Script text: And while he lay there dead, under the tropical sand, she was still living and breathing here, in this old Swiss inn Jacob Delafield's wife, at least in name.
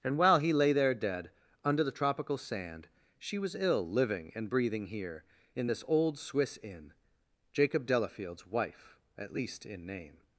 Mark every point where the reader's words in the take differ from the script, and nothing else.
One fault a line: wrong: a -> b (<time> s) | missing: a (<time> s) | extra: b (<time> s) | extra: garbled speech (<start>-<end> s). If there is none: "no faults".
wrong: still -> ill (3.5 s)